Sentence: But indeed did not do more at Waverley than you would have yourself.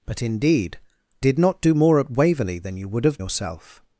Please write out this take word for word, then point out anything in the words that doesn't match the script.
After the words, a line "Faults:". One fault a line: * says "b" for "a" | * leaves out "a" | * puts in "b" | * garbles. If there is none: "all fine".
But indeed did not do more at Waverley than you would have yourself.
Faults:
all fine